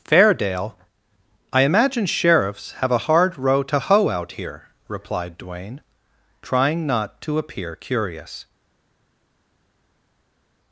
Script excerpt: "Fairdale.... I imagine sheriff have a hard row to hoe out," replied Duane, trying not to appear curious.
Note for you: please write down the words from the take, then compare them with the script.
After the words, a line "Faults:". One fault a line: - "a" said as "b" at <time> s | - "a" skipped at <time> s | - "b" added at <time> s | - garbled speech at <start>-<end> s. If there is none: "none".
"Fairdale.... I imagine sheriffs have a hard row to hoe out here," replied Duane, trying not to appear curious.
Faults:
- "sheriff" said as "sheriffs" at 2.1 s
- "here" added at 4.3 s